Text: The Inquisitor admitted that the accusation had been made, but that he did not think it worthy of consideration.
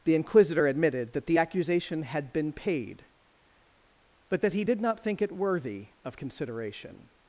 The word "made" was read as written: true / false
false